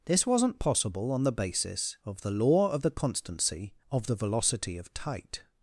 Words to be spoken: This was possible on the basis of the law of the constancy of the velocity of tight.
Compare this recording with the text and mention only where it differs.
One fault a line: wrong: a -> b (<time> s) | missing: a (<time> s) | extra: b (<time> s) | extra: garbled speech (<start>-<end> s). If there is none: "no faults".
wrong: was -> wasn't (0.2 s)